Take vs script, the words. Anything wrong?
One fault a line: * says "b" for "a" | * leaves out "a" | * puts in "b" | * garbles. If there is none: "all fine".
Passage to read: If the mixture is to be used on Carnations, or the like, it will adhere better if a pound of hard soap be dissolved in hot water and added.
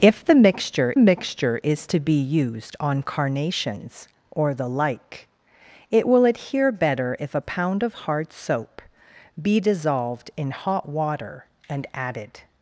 * puts in "mixture"